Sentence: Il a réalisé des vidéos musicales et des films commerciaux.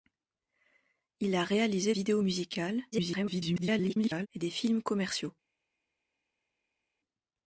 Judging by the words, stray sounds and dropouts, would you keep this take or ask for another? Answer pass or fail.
fail